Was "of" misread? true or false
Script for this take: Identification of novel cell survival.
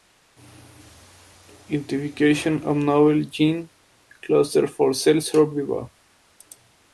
false